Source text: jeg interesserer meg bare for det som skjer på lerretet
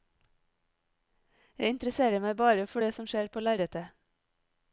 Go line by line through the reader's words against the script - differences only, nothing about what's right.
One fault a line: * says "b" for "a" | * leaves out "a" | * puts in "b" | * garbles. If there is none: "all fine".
all fine